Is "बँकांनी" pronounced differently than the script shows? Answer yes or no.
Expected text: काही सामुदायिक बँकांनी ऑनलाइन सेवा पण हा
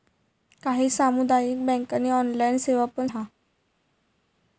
no